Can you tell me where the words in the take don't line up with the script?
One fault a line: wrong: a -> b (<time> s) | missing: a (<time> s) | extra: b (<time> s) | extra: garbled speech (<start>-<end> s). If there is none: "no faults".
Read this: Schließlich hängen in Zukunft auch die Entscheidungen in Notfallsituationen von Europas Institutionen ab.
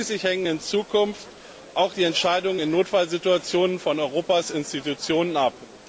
no faults